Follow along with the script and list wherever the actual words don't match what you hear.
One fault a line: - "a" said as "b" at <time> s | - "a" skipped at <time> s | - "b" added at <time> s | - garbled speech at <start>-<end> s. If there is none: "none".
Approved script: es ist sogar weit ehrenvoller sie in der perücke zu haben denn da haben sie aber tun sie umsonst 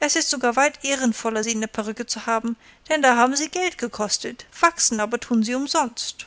- "geld gekostet wachsen" added at 3.5 s